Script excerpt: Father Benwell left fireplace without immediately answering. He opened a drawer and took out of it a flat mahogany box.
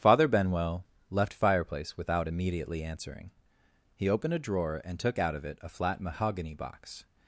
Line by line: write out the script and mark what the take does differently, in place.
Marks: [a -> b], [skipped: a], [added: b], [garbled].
Father Benwell left fireplace without immediately answering. He opened a drawer and took out of it a flat mahogany box.